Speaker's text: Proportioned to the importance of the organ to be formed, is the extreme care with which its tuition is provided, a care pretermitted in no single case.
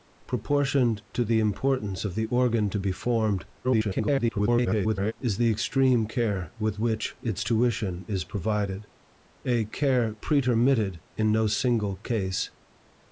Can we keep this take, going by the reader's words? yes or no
no